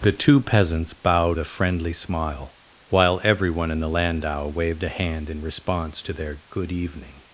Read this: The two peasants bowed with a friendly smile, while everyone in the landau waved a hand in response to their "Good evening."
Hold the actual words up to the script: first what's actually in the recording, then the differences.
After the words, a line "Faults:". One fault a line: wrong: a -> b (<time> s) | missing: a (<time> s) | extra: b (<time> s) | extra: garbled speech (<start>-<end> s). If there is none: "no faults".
The two peasants bowed a friendly smile, while everyone in the landau waved a hand in response to their "Good evening."
Faults:
missing: with (1.4 s)